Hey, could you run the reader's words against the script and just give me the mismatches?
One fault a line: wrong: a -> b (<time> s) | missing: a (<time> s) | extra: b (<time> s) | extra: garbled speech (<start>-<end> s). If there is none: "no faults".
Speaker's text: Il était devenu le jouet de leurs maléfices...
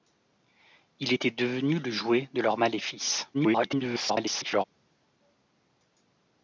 extra: garbled speech (3.3-4.6 s)